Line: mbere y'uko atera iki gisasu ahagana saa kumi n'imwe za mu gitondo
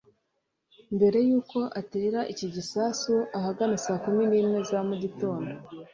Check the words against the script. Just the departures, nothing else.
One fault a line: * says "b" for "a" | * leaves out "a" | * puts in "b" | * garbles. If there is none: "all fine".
all fine